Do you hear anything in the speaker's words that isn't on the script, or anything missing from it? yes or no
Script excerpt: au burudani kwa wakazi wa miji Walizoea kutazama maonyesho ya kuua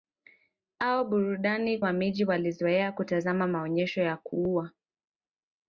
yes